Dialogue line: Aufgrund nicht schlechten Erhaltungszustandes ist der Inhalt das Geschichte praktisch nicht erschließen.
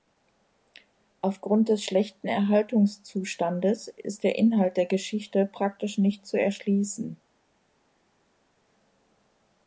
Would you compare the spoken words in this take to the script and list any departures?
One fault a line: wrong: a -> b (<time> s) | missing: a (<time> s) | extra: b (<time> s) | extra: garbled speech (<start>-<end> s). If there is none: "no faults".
wrong: nicht -> des (1.7 s)
wrong: das -> der (4.8 s)
extra: zu (6.2 s)